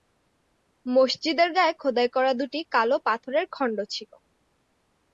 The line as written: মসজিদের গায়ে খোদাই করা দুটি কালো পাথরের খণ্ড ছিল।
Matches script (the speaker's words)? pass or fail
pass